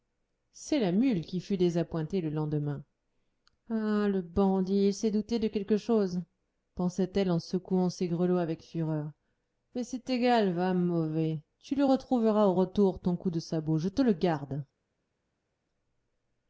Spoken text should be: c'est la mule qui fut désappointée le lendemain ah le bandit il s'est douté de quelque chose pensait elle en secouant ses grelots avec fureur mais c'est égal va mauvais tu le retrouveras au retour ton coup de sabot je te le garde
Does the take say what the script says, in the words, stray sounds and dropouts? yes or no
yes